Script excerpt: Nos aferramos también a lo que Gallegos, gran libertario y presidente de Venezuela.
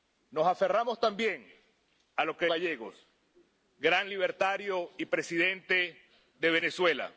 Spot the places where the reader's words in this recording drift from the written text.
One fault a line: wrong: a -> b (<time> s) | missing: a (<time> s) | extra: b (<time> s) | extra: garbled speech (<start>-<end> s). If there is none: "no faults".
no faults